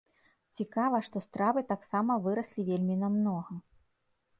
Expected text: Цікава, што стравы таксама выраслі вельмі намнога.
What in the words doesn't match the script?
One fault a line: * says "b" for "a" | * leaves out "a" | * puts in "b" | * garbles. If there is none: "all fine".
all fine